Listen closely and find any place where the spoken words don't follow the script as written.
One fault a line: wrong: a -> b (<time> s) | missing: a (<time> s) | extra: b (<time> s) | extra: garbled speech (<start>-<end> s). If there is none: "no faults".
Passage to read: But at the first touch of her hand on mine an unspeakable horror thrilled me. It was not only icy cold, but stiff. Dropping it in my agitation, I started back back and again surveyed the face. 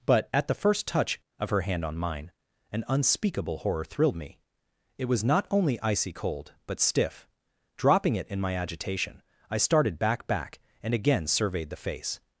no faults